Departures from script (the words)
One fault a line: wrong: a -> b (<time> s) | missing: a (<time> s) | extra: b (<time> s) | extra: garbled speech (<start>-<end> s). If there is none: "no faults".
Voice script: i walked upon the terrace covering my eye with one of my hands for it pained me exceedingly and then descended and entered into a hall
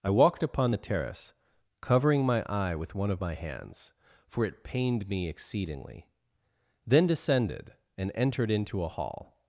missing: and (6.1 s)